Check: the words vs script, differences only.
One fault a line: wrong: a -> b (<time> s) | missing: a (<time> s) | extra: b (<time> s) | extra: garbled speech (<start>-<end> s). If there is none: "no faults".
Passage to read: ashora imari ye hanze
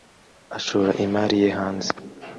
no faults